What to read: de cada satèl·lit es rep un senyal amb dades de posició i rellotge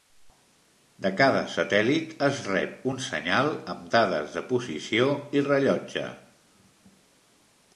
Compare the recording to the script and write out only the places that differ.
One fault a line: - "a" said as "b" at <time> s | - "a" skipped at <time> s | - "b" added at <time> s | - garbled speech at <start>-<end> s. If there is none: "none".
none